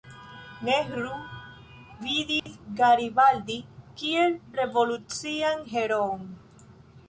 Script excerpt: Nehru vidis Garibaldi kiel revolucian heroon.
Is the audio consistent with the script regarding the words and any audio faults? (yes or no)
no